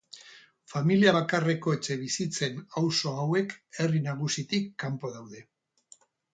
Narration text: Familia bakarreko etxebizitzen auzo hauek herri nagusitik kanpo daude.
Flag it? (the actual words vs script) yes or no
no